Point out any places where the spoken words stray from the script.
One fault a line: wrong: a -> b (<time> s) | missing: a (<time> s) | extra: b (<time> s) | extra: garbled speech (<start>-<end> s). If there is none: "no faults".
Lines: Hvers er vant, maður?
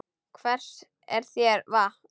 extra: þér (1.3 s)